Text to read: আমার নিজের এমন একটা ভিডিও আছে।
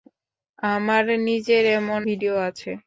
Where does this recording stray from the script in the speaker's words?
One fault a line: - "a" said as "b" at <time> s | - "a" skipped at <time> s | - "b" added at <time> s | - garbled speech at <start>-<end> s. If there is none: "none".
- "একটা" skipped at 2.0 s